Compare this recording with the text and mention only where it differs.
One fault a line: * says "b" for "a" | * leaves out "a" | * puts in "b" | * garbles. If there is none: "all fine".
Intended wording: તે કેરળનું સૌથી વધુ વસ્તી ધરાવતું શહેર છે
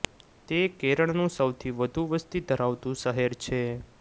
all fine